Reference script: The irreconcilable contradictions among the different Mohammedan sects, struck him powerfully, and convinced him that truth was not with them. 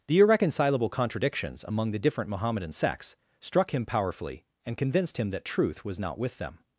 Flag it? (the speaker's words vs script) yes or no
no